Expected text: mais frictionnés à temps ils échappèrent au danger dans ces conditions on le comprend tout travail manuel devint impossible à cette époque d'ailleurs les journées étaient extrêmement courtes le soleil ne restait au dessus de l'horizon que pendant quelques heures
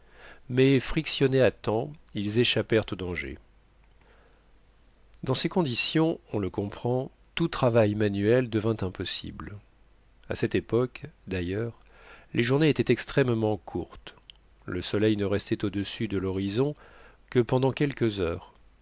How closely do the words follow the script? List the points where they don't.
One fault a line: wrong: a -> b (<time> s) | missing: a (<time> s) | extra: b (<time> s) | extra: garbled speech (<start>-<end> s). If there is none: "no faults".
no faults